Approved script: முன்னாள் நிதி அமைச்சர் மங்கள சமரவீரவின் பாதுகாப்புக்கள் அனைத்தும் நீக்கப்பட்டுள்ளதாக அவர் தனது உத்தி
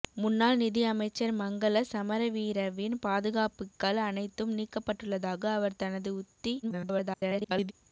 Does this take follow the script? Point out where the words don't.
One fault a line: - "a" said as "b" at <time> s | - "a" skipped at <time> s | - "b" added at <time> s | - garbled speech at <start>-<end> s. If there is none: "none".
- garbled speech at 6.6-7.7 s